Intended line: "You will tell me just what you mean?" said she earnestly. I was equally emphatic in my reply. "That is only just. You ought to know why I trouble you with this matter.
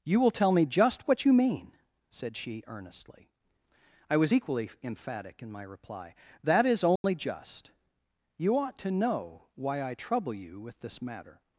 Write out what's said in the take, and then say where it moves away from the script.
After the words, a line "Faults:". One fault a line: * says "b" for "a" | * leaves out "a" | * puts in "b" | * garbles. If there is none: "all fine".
"You will tell me just what you mean?" said she earnestly. I was equally emphatic in my reply. "That is only just. You ought to know why I trouble you with this matter.
Faults:
all fine